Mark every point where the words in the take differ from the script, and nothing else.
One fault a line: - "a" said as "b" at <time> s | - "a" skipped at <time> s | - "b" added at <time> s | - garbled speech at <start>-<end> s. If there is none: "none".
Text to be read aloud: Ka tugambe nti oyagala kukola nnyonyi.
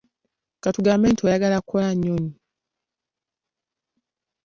none